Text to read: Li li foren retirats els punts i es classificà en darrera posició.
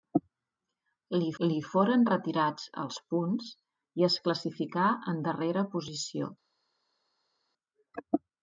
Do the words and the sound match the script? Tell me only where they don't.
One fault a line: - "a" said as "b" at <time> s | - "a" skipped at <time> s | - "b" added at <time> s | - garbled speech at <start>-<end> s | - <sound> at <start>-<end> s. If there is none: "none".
none